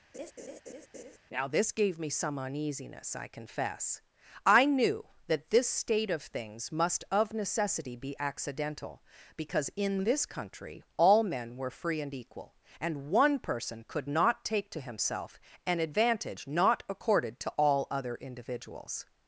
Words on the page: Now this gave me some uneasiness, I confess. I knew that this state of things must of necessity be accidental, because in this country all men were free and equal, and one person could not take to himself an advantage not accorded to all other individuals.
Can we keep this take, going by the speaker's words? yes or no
yes